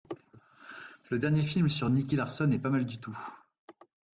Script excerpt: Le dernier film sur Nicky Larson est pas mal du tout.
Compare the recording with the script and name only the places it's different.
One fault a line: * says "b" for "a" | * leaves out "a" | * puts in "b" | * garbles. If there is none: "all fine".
all fine